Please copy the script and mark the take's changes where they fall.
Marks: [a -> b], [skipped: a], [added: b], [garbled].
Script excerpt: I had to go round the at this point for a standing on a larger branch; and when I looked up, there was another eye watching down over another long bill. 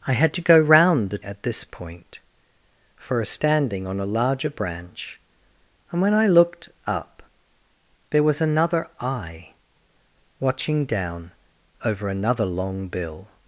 I had to go round the at this point for a standing on a larger branch; and when I looked up, there was another eye watching down over another long bill.